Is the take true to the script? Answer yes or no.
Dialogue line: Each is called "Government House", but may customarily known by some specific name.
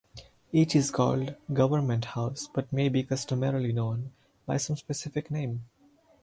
no